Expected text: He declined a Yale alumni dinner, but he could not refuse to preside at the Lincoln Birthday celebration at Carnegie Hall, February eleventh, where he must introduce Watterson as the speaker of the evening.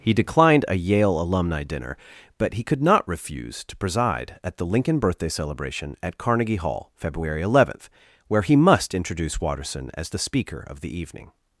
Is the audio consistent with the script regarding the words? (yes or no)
yes